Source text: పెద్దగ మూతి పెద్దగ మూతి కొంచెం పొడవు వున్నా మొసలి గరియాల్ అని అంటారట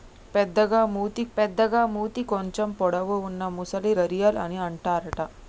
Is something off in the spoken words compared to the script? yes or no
no